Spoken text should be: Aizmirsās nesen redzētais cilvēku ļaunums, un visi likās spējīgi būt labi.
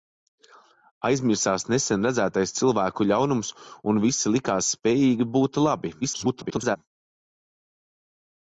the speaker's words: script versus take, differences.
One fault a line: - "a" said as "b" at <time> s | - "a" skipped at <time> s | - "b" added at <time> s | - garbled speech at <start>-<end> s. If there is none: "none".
- garbled speech at 6.0-6.8 s